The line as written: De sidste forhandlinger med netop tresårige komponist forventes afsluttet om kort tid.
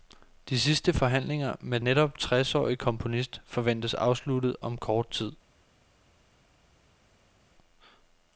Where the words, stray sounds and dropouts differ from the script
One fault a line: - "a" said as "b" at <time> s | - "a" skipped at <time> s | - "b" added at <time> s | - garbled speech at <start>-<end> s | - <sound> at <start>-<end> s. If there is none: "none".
none